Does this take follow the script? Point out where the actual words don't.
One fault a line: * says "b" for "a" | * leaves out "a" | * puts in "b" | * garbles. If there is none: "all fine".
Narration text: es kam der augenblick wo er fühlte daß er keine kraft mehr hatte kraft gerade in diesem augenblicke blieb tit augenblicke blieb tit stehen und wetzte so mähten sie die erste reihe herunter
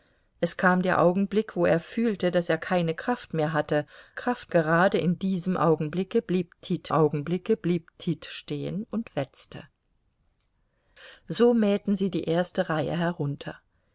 all fine